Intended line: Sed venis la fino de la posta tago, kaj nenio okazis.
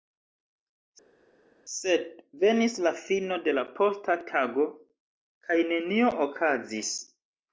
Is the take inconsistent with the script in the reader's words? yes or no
no